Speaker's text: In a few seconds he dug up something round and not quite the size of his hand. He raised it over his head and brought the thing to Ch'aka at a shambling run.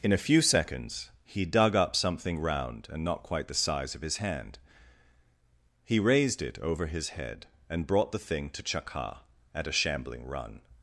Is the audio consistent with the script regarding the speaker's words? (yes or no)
yes